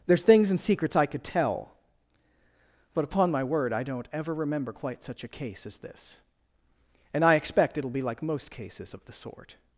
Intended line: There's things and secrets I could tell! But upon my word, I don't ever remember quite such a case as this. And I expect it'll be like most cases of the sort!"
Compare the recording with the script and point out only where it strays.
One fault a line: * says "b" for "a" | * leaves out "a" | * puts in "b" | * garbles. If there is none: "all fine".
all fine